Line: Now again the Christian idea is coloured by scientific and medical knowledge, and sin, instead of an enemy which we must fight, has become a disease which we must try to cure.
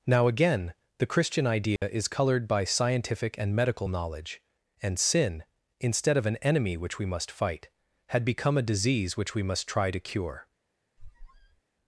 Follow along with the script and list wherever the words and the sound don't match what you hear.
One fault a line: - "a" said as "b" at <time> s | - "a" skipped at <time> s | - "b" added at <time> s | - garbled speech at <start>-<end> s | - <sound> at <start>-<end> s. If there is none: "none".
- dropout at 1.8-1.8 s
- "has" said as "had" at 8.1 s
- squeak at 11.0-11.6 s